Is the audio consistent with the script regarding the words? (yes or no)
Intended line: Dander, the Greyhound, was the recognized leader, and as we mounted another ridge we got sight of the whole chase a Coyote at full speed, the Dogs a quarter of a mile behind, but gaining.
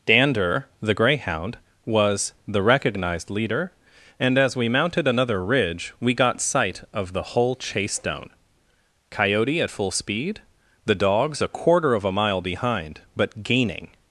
no